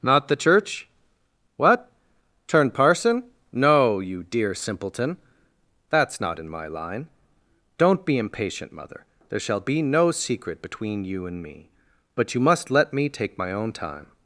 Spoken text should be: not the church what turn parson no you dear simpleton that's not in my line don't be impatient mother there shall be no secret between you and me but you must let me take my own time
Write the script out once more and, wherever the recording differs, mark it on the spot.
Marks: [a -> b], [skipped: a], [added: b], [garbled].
not the church what turn parson no you dear simpleton that's not in my line don't be impatient mother there shall be no secret between you and me but you must let me take my own time